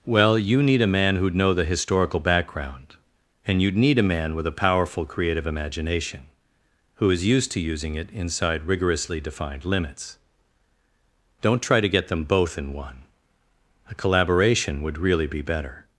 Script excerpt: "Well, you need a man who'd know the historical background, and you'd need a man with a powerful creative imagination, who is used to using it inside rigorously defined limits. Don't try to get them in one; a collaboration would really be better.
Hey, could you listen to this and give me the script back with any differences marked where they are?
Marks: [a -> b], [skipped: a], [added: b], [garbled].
"Well, you need a man who'd know the historical background, and you'd need a man with a powerful creative imagination, who is used to using it inside rigorously defined limits. Don't try to get them [added: both] in one; a collaboration would really be better.